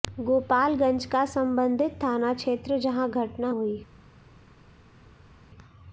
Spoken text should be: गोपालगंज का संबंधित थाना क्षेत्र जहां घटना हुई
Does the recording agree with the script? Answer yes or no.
yes